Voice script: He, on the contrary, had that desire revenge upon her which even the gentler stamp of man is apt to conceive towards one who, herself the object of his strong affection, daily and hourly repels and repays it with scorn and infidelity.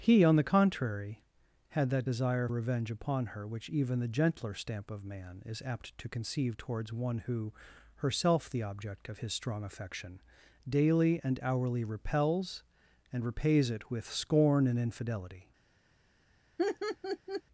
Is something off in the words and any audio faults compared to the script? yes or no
yes